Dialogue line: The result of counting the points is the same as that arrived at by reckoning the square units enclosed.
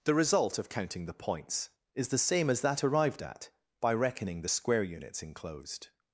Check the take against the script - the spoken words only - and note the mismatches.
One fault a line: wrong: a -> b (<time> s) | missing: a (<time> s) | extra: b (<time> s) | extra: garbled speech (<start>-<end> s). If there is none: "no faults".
no faults